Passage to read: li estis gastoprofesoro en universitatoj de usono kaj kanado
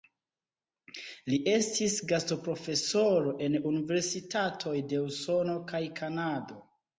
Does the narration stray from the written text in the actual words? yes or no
no